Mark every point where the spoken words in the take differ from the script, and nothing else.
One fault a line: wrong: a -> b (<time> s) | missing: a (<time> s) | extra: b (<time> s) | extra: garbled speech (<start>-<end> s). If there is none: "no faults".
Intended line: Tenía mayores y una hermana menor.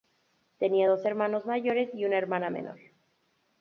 extra: dos hermanos (0.9 s)